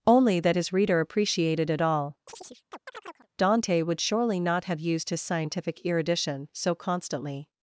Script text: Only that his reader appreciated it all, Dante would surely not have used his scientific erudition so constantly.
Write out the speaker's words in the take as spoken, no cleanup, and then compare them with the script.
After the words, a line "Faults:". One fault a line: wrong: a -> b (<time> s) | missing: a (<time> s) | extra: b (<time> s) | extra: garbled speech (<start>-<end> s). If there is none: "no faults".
Only that his reader appreciated it all, Dante would surely not have used his scientific erudition so constantly.
Faults:
no faults